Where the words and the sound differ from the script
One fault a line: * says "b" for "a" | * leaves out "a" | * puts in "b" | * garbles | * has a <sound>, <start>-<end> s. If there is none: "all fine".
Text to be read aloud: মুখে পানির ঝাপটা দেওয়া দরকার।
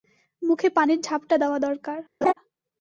* has a laugh, 2.2-2.3 s